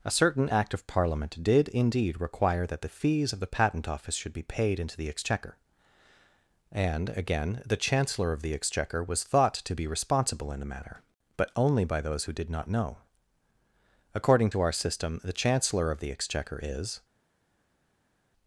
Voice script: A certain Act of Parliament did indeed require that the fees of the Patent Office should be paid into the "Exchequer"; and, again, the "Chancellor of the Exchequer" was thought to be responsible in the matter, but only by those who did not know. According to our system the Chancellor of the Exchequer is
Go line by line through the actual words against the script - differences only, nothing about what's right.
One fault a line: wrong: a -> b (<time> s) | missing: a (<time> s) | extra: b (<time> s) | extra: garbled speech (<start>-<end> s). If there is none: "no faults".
no faults